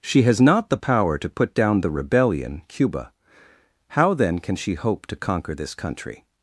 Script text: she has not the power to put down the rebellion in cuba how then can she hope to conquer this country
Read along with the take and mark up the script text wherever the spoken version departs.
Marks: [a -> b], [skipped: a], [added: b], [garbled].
she has not the power to put down the rebellion [skipped: in] cuba how then can she hope to conquer this country